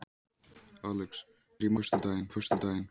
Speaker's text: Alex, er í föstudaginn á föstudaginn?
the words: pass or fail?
pass